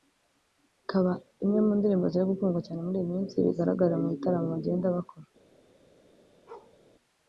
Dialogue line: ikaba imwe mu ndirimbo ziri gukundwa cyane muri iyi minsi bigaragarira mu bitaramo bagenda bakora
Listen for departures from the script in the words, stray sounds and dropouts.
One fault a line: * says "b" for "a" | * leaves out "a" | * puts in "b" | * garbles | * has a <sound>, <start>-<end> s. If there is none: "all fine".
* has a bark, 6.5-6.8 s